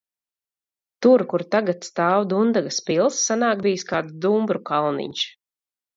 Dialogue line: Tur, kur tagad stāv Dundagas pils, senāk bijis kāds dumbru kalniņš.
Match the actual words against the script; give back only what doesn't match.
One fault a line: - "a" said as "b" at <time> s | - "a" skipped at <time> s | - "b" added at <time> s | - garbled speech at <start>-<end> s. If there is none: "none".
none